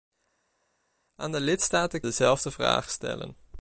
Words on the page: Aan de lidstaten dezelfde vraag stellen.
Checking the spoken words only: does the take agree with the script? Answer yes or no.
yes